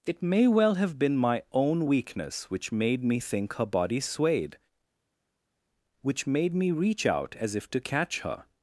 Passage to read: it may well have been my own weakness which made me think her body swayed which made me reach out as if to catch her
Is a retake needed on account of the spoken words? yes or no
no